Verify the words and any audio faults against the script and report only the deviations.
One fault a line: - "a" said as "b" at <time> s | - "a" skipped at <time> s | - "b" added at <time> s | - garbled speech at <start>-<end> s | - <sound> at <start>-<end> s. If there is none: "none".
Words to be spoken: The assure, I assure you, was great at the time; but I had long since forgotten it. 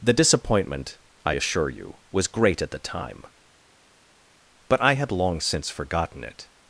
- "assure" said as "disappointment" at 0.1 s